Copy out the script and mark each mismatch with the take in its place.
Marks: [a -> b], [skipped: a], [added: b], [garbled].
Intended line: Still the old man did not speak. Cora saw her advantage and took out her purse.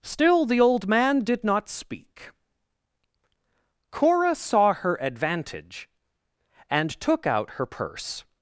Still the old man did not speak. Cora saw her advantage and took out her purse.